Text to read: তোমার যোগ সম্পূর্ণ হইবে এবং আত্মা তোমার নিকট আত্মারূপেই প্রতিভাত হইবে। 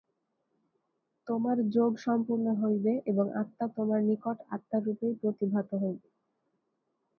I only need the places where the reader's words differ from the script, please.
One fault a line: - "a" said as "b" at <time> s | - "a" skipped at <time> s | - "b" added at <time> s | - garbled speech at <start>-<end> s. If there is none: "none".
none